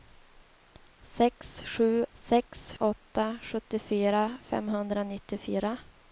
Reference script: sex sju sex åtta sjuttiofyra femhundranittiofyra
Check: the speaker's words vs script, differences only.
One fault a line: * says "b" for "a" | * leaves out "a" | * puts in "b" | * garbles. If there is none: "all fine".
all fine